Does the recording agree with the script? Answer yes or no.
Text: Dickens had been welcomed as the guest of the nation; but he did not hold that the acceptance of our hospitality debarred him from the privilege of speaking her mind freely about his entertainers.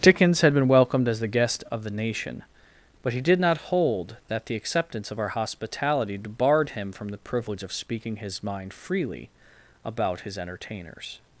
no